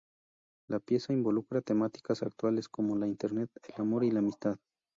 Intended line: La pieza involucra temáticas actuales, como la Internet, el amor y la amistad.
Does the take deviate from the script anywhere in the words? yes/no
no